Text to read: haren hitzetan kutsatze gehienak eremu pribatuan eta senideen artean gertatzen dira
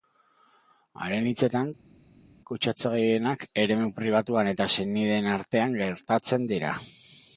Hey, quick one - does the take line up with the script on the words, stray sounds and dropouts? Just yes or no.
yes